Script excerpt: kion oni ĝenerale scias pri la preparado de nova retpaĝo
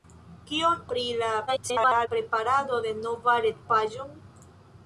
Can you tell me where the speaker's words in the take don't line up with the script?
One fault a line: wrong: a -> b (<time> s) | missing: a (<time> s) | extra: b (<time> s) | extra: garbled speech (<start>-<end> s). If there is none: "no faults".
missing: oni ĝenerale scias (0.8 s)
extra: garbled speech (1.5-2.1 s)